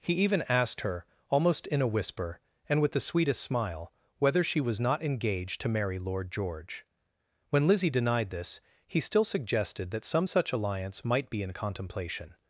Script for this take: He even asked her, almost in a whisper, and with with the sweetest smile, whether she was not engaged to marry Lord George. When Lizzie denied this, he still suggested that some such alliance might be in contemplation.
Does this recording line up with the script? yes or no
no